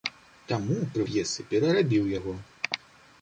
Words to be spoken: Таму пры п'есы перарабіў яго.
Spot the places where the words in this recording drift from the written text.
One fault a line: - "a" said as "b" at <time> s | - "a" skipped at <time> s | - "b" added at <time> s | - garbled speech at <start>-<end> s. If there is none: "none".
none